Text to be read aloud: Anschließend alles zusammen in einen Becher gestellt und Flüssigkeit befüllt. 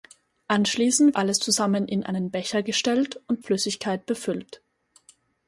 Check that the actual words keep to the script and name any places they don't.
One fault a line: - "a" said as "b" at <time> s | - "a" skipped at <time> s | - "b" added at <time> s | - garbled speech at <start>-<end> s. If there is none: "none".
none